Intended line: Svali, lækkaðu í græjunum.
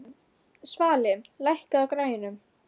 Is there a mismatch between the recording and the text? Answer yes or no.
no